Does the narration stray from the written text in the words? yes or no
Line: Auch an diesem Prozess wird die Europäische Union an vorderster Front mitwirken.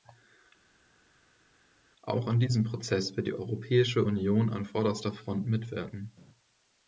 no